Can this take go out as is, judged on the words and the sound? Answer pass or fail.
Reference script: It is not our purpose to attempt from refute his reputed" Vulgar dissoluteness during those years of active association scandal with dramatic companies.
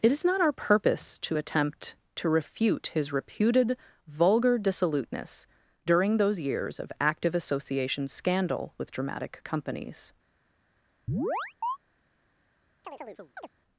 fail